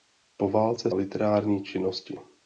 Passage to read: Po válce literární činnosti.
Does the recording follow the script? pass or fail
pass